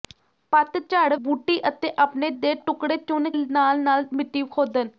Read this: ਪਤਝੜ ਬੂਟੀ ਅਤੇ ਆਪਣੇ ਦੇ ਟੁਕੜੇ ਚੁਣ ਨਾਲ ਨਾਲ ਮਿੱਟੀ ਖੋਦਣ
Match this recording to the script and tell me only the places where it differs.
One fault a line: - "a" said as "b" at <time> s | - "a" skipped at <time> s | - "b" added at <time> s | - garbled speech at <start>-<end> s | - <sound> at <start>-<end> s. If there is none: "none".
none